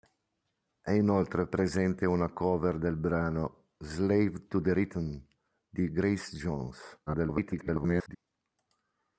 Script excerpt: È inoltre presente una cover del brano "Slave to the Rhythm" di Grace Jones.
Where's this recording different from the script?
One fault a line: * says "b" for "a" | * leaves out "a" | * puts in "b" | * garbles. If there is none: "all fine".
* garbles